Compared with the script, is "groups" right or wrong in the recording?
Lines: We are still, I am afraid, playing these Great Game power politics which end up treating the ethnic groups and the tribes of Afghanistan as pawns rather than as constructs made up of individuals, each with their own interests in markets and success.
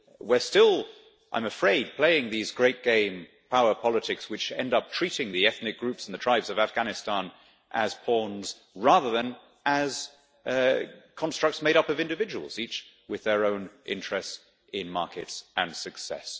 right